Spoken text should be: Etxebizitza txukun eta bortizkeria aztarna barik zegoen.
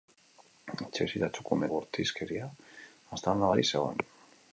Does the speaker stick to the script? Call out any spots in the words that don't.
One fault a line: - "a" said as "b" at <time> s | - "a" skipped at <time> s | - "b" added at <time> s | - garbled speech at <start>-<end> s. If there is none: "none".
- "eta" skipped at 1.7 s